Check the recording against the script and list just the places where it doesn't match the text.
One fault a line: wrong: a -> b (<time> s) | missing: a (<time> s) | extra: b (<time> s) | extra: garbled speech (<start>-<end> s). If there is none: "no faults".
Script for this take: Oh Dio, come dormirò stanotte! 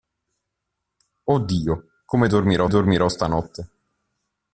extra: dormirò (2.7 s)